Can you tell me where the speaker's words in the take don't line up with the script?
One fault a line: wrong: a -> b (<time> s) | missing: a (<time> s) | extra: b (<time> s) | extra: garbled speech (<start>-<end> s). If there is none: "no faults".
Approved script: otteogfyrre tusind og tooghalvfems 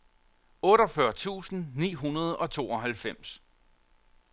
extra: ni hundrede (1.7 s)